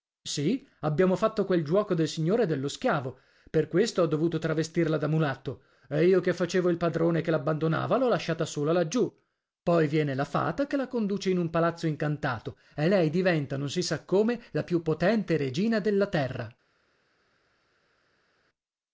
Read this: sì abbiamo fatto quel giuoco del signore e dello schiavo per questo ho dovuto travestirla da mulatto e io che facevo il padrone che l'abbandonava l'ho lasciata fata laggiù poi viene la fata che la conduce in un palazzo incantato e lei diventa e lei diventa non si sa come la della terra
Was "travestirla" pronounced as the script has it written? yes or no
yes